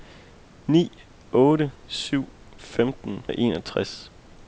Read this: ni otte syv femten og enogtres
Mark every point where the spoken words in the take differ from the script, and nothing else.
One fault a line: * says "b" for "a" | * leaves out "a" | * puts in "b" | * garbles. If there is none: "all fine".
all fine